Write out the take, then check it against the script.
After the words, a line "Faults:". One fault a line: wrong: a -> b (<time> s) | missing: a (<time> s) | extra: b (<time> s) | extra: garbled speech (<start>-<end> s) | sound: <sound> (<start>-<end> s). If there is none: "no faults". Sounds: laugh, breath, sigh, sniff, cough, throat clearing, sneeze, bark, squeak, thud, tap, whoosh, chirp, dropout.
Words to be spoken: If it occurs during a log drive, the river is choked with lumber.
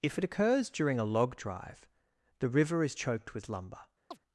If it occurs during a log drive, the river is choked with lumber.
Faults:
sound: chirp (4.1-4.2 s)